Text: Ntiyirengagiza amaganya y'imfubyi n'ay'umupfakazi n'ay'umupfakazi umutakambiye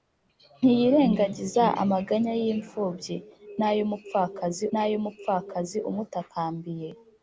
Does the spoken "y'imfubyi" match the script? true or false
true